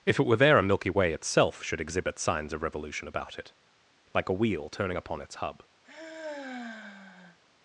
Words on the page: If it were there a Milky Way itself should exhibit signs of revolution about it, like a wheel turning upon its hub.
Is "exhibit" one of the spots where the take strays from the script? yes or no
no